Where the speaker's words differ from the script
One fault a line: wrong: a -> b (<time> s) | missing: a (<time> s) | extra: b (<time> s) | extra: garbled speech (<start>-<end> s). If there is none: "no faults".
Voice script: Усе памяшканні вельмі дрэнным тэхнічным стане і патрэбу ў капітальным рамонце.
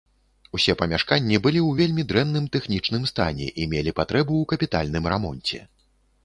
extra: былі ў (1.5 s)
extra: мелі (3.7 s)